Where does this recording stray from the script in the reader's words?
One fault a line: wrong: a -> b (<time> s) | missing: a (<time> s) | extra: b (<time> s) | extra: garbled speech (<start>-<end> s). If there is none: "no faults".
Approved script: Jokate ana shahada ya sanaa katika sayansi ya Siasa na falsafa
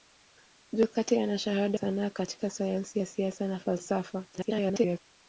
missing: ya (1.8 s)
extra: garbled speech (4.3-5.0 s)